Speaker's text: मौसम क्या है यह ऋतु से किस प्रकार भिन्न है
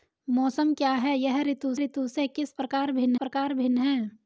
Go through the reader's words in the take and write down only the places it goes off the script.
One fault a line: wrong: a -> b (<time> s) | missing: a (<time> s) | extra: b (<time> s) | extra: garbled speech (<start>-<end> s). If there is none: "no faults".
extra: ऋतु (1.8 s)
extra: प्रकार भिन्न (3.1 s)